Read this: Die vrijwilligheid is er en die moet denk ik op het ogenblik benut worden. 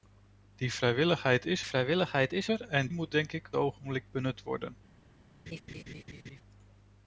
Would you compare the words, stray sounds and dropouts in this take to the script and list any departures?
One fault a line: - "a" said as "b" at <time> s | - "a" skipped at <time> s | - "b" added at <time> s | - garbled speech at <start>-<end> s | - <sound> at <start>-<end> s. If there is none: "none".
- "vrijwilligheid is" added at 1.7 s
- "die" skipped at 2.9 s
- "op het" skipped at 3.5 s
- laugh at 5.5-6.4 s